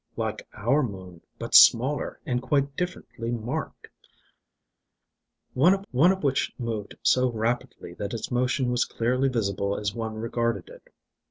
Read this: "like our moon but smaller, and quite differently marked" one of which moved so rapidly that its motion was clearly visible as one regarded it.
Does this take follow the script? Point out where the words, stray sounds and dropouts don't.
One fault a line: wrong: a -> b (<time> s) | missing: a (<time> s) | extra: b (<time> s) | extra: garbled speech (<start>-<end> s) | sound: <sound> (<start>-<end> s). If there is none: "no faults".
extra: one of (5.9 s)